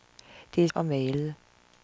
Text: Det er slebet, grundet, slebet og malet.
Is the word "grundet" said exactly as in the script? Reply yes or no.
no